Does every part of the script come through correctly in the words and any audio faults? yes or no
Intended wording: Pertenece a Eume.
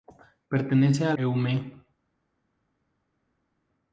yes